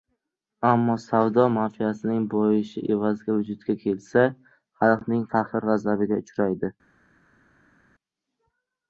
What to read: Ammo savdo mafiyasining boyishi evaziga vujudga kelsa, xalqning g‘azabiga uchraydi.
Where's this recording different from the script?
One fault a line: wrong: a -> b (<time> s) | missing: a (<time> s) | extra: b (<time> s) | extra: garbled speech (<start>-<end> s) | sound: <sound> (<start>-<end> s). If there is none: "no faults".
extra: qahr (5.3 s)